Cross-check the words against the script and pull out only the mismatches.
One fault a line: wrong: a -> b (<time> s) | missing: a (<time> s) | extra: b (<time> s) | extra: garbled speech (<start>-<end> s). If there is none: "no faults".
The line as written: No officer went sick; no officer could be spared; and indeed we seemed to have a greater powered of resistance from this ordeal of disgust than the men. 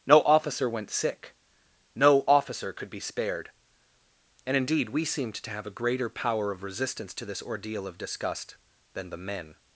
wrong: powered -> power (6.1 s)
wrong: from -> to (7.1 s)